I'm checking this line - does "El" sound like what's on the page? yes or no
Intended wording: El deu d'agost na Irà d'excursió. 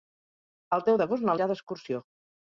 yes